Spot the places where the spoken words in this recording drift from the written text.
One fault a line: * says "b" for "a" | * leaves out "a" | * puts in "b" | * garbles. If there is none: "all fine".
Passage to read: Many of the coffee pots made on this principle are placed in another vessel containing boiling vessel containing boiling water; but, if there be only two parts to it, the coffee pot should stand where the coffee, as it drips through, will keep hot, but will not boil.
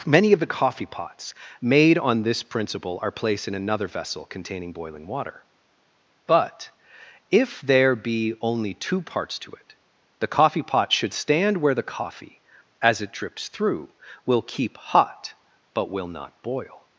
* leaves out "vessel containing boiling"